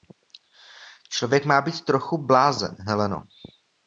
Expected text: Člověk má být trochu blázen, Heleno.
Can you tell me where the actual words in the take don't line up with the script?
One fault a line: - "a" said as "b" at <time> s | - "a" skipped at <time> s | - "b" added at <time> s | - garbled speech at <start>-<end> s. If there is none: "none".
none